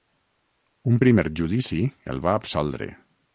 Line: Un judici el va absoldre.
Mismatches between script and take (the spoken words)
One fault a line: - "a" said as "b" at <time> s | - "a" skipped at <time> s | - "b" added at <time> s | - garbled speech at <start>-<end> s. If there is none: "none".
- "primer" added at 1.0 s